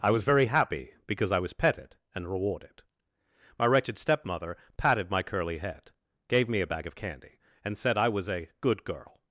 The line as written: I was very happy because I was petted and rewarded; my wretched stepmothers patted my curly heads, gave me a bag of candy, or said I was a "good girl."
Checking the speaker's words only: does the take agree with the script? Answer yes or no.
no